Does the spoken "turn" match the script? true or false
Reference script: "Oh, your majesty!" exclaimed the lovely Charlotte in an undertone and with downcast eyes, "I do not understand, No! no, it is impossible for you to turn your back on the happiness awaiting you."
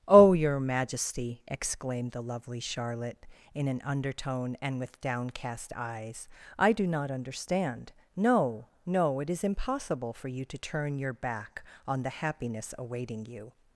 true